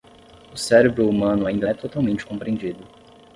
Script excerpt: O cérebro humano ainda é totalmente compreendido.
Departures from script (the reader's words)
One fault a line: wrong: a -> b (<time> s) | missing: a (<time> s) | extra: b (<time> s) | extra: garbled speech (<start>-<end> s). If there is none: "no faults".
no faults